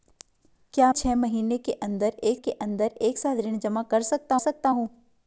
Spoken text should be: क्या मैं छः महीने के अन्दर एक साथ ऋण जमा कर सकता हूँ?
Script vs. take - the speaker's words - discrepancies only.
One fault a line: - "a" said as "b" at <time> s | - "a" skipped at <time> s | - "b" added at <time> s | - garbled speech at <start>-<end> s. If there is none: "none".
- "मैं" skipped at 0.9 s
- "के अन्दर एक" added at 2.4 s
- "सकता" added at 4.4 s